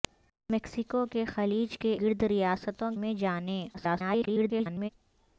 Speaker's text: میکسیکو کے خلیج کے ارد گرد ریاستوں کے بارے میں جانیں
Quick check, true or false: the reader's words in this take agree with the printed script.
false